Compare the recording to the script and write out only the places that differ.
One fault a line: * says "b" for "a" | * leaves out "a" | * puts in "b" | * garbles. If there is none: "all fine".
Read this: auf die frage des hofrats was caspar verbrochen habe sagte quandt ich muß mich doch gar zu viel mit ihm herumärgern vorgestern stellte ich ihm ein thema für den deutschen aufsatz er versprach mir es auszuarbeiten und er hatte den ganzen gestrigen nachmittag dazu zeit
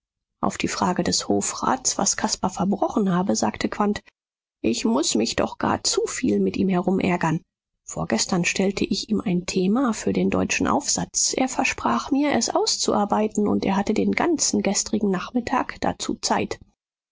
all fine